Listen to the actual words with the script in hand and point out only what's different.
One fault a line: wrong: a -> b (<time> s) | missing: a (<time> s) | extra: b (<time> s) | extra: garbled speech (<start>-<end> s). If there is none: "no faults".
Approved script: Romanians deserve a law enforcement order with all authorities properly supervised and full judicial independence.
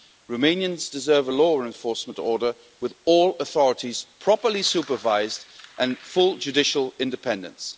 no faults